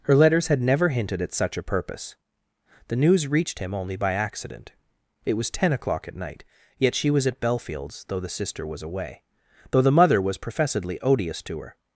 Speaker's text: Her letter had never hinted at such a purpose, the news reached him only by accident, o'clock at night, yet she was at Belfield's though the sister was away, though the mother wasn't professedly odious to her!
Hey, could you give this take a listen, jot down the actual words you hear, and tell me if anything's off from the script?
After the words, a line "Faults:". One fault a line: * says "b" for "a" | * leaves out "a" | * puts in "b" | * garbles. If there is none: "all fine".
Her letters had never hinted at such a purpose, the news reached him only by accident, it was ten o'clock at night, yet she was at Belfield's though the sister was away, though the mother was professedly odious to her!
Faults:
* says "letters" for "letter"
* puts in "it was ten"
* says "was" for "wasn't"